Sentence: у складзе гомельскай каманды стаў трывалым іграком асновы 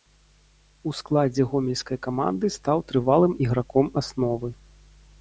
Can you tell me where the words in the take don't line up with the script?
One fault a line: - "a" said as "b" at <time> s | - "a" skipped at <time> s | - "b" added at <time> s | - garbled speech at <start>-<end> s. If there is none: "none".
none